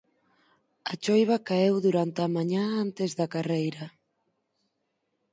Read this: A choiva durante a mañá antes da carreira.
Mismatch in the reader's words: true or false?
true